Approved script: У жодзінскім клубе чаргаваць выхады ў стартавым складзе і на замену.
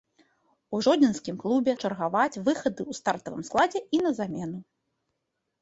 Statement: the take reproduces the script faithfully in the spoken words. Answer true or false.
true